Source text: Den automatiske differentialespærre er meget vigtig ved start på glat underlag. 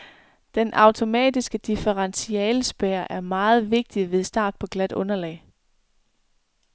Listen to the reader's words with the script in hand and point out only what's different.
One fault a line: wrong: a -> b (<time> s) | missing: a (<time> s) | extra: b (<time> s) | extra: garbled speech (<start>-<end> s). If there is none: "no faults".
no faults